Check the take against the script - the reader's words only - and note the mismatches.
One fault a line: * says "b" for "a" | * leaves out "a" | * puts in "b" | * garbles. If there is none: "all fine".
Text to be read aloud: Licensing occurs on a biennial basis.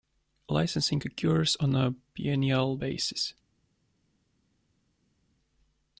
all fine